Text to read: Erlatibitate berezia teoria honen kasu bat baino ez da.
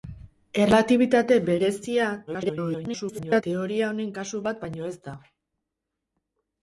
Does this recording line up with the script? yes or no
no